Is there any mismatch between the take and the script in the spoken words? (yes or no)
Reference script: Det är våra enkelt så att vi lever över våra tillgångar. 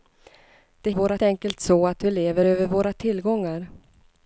no